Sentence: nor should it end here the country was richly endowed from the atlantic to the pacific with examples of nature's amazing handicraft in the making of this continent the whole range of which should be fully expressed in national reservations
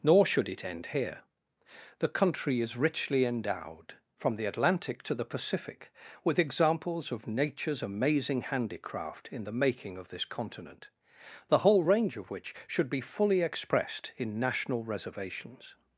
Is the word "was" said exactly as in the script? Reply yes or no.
no